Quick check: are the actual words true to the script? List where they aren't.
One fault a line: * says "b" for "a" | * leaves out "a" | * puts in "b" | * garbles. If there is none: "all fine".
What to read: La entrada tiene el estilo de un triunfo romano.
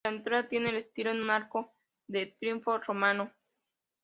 * puts in "arco de"